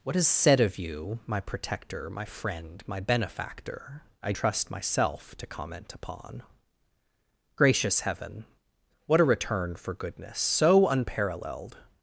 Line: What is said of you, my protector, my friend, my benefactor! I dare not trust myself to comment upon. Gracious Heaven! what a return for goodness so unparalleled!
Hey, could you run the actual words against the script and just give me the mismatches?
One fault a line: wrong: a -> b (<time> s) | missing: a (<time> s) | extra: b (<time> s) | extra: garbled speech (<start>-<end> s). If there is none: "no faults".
missing: dare not (4.3 s)